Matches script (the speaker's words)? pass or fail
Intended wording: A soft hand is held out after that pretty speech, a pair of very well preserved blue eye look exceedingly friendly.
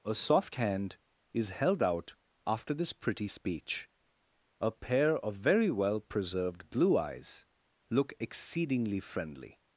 fail